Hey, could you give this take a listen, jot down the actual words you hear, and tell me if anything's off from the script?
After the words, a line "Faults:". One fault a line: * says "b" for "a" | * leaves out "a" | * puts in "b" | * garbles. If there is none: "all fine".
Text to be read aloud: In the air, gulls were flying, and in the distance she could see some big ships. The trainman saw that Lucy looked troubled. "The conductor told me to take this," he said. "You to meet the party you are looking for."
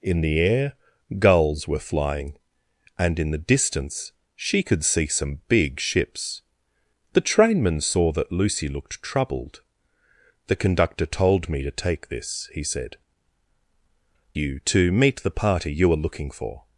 In the air, gulls were flying, and in the distance she could see some big ships. The trainman saw that Lucy looked troubled. "The conductor told me to take this," he said. "You to meet the party you are looking for."
Faults:
all fine